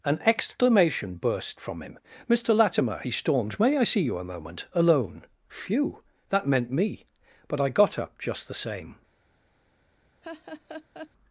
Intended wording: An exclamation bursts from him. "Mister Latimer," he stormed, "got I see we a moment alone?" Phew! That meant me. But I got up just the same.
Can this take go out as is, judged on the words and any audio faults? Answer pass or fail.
fail